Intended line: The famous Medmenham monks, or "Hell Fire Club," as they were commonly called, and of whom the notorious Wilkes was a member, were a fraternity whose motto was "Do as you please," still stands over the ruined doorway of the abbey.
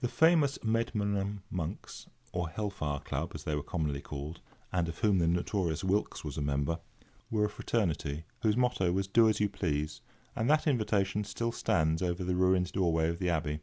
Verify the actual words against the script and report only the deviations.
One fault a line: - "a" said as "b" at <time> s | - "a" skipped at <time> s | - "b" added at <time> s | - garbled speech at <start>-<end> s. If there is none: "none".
- "and that invitation" added at 10.3 s